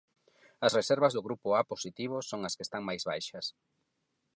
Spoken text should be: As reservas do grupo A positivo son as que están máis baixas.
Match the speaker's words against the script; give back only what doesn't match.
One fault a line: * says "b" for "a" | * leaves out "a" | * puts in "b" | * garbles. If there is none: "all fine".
all fine